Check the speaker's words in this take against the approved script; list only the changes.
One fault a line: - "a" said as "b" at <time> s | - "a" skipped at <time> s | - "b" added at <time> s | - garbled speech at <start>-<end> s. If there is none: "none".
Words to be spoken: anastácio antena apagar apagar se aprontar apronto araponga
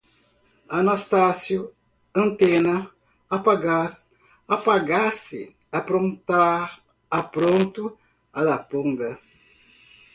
none